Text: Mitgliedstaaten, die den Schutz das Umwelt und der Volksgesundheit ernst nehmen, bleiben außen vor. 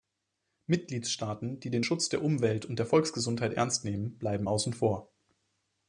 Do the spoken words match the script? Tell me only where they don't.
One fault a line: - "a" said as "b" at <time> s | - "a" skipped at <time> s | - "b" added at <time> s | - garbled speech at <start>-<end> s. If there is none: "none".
- "das" said as "der" at 2.1 s